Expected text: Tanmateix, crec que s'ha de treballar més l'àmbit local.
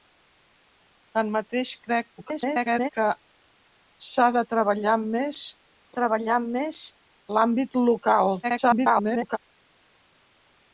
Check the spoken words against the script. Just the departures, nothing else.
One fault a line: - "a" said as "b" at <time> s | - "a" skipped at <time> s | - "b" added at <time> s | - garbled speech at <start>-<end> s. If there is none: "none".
- garbled speech at 2.2-2.9 s
- "treballar més" added at 6.0 s
- garbled speech at 8.4-9.4 s